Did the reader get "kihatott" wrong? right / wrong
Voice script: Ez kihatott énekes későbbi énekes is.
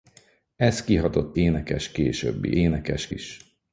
right